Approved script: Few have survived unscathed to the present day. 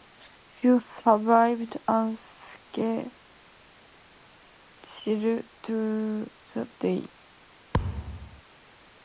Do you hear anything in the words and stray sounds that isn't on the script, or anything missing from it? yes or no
yes